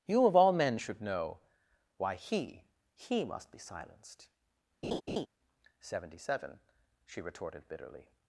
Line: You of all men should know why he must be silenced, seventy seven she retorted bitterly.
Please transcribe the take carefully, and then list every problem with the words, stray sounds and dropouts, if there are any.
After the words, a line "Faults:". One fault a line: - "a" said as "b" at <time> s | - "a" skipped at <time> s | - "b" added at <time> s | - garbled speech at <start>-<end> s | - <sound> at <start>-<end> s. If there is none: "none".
You of all men should know why he he must be silenced, seventy seven she retorted bitterly.
Faults:
- "he" added at 2.9 s
- laugh at 4.8-5.3 s